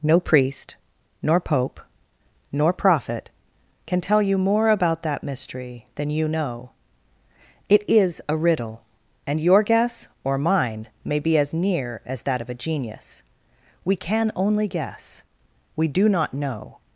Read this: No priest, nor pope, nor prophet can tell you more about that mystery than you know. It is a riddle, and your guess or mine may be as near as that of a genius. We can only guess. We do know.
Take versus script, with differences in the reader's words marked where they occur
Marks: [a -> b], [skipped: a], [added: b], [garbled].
No priest, nor pope, nor prophet can tell you more about that mystery than you know. It is a riddle, and your guess or mine may be as near as that of a genius. We can only guess. We do [added: not] know.